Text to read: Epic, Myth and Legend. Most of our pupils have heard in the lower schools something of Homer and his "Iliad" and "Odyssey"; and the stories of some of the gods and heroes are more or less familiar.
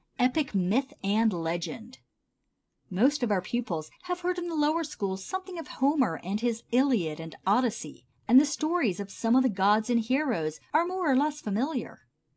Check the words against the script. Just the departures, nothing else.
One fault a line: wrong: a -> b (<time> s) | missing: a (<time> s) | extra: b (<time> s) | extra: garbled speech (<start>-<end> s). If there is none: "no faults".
no faults